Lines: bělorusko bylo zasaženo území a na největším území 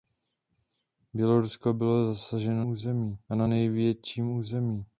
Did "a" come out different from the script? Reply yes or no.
no